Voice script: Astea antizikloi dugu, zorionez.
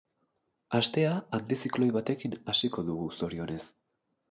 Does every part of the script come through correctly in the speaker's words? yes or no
no